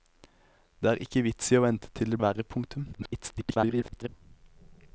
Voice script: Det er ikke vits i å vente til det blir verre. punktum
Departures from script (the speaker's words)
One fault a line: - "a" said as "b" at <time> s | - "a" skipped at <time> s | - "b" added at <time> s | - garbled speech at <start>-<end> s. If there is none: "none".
- "blir" skipped at 2.2 s
- garbled speech at 2.9-4.1 s